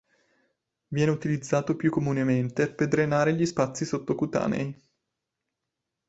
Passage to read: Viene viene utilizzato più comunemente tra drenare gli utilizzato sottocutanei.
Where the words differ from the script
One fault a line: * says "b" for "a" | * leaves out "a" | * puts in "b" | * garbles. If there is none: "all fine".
* leaves out "viene"
* says "per" for "tra"
* says "spazi" for "utilizzato"